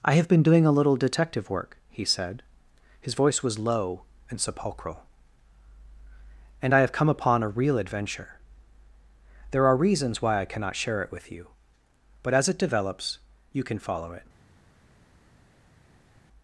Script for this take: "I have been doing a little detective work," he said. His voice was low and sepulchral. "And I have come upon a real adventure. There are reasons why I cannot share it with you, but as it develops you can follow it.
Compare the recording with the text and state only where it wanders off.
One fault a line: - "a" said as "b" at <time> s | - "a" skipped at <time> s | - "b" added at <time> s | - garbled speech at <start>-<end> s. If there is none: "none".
none